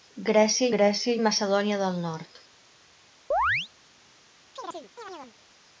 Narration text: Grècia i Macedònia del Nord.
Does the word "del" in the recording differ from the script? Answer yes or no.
no